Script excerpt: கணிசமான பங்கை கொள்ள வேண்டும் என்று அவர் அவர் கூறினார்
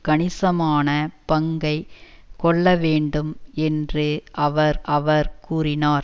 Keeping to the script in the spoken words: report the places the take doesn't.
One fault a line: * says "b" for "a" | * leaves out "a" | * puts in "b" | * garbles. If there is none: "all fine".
all fine